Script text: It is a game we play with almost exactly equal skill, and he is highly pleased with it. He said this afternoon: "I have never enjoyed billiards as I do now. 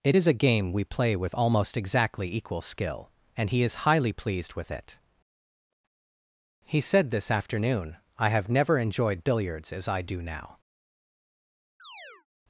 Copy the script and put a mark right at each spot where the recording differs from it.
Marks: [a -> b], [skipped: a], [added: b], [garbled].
It is a game we play with almost exactly equal skill, and he is highly pleased with it. He said this afternoon: "I have never enjoyed billiards as I do now.